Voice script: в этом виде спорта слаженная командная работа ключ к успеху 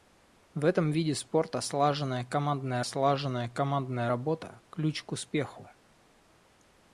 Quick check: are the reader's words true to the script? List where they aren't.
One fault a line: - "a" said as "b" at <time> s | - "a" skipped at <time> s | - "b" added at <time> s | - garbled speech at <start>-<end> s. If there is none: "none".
- "слаженная командная" added at 2.8 s